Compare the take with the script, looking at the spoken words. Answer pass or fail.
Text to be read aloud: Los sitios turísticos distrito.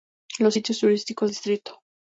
pass